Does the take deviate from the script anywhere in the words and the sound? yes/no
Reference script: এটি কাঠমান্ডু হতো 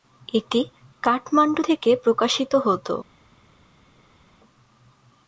yes